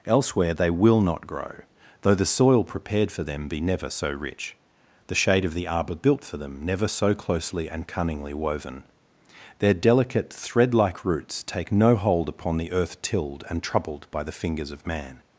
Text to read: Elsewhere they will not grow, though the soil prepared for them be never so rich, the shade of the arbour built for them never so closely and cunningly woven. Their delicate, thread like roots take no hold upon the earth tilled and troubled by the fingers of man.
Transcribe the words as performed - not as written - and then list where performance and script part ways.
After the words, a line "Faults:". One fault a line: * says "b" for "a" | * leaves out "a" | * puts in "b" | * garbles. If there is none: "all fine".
Elsewhere they will not grow, though the soil prepared for them be never so rich, the shade of the arbour built for them never so closely and cunningly woven. Their delicate, thread like roots take no hold upon the earth tilled and troubled by the fingers of man.
Faults:
all fine